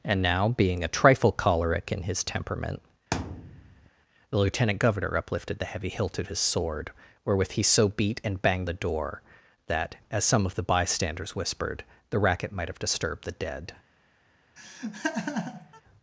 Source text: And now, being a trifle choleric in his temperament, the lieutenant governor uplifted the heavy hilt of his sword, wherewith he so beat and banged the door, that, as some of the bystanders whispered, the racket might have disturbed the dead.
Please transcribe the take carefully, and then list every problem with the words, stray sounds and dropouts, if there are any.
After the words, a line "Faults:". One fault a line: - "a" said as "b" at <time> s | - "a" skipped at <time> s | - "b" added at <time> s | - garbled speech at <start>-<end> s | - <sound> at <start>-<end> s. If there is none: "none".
And now, being a trifle choleric in his temperament, the lieutenant governor uplifted the heavy hilt of his sword, wherewith he so beat and banged the door, that, as some of the bystanders whispered, the racket might have disturbed the dead.
Faults:
- thud at 3.1-3.9 s
- laugh at 14.6-15.8 s